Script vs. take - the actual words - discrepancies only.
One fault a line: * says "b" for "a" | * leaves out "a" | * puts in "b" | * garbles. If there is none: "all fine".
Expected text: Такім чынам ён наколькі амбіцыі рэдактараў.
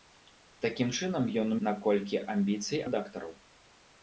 all fine